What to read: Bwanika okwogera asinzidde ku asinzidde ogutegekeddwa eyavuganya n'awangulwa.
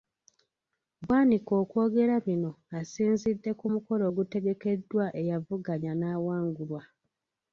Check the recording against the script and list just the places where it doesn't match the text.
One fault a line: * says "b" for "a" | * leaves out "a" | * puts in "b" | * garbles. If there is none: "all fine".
* puts in "bino"
* says "mukolo" for "asinzidde"